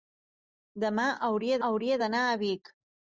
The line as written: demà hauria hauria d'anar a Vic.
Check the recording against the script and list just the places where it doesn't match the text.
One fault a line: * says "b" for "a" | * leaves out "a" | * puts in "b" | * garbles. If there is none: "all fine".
all fine